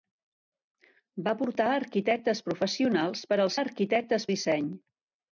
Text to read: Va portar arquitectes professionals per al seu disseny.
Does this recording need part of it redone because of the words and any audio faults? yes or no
yes